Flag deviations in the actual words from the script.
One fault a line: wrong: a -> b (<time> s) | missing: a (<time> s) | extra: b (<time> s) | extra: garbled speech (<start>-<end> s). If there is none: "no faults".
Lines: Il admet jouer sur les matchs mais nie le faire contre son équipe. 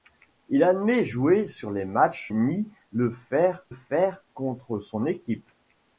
missing: mais (2.3 s)
extra: faire (3.7 s)